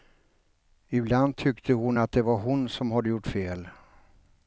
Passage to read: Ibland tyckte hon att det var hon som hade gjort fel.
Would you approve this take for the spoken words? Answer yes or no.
yes